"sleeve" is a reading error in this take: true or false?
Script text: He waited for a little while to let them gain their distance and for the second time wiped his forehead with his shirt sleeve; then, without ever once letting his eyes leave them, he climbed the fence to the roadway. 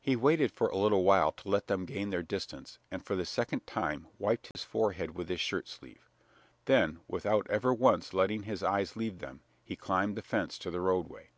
false